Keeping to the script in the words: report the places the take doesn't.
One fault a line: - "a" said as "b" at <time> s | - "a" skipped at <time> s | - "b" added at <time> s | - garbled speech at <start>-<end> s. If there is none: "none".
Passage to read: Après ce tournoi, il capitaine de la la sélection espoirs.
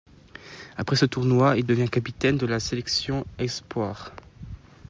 - "devient" added at 1.7 s
- "la" skipped at 2.6 s